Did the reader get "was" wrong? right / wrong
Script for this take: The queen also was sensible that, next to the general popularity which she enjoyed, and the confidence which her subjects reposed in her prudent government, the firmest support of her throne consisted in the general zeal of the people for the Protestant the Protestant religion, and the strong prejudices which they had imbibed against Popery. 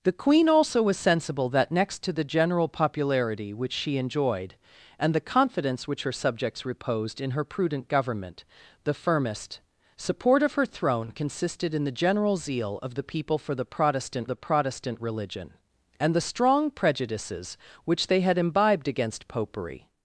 right